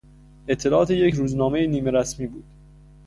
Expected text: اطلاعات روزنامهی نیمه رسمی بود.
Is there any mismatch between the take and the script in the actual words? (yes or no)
yes